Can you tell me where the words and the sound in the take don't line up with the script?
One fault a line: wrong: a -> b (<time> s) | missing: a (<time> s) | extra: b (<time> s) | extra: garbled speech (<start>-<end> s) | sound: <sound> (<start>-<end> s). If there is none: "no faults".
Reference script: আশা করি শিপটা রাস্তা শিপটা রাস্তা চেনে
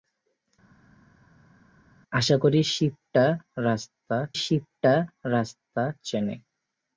no faults